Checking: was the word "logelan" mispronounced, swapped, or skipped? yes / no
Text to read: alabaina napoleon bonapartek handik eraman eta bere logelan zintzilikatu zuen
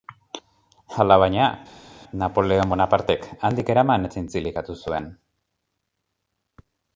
yes